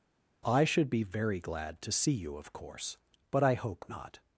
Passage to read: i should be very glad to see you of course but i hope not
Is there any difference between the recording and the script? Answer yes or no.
no